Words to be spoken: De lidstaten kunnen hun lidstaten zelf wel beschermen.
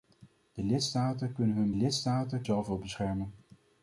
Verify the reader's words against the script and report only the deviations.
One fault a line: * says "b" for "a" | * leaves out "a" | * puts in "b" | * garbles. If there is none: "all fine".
all fine